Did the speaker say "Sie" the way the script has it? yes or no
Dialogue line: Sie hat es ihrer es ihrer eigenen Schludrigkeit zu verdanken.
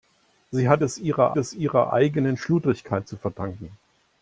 yes